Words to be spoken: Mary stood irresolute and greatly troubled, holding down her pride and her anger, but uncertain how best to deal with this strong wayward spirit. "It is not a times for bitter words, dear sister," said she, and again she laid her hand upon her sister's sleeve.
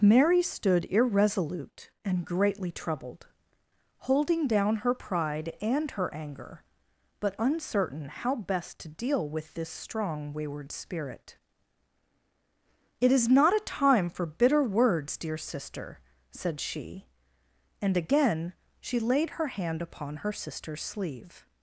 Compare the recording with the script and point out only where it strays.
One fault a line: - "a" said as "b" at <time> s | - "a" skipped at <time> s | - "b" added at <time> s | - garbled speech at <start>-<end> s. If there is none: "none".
- "times" said as "time" at 13.6 s